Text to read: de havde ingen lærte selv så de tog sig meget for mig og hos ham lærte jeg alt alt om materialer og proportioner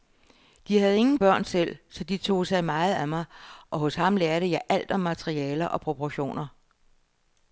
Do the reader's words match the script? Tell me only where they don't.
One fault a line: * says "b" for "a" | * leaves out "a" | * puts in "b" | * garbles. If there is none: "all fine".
* says "børn" for "lærte"
* says "af" for "for"
* leaves out "alt"